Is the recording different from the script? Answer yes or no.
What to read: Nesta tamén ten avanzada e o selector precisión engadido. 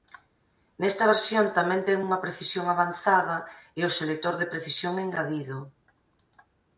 yes